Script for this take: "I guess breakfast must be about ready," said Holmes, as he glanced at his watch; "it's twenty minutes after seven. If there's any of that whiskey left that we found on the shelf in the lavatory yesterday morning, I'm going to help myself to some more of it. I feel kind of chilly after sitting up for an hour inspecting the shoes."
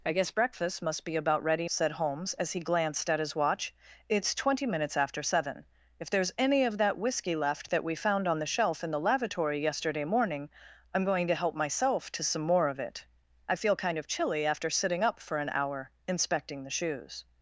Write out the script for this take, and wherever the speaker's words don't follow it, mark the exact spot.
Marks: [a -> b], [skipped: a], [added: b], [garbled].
"I guess breakfast must be about ready," said Holmes, as he glanced at his watch; "it's twenty minutes after seven. If there's any of that whiskey left that we found on the shelf in the lavatory yesterday morning, I'm going to help myself to some more of it. I feel kind of chilly after sitting up for an hour inspecting the shoes."